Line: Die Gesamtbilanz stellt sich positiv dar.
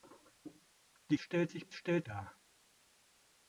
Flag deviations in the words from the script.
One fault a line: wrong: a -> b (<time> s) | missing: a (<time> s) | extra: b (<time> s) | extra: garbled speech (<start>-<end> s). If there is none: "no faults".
missing: Gesamtbilanz (1.2 s)
wrong: positiv -> stellt (1.7 s)